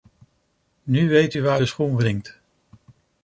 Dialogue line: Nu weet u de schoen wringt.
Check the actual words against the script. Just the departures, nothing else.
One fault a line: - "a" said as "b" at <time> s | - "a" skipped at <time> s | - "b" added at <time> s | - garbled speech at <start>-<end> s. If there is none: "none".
- "waar" added at 1.4 s